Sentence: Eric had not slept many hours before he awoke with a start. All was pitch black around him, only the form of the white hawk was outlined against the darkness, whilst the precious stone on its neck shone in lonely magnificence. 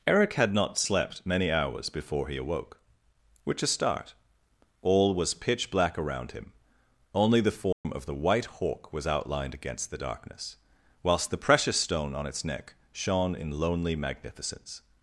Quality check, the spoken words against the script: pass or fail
fail